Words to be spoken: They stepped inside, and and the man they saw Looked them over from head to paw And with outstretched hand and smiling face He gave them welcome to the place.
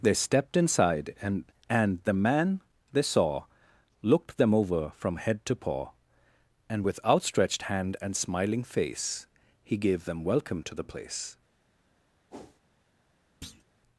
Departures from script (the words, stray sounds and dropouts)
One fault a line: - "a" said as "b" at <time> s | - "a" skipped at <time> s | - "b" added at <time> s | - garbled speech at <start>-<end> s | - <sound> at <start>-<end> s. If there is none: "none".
- whoosh at 12.3-12.6 s
- thud at 13.4-13.6 s